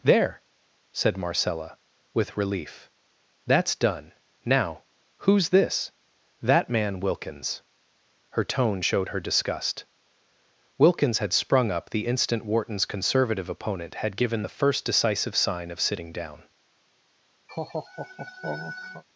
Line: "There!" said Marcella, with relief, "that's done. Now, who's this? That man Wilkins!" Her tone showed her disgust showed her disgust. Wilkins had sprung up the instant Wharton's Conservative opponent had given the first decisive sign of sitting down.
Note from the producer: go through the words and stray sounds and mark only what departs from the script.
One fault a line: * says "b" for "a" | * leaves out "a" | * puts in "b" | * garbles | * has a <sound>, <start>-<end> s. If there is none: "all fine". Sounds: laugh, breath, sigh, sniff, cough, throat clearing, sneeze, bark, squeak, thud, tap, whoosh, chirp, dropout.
* leaves out "showed her disgust"
* has a laugh, 17.5-19.0 s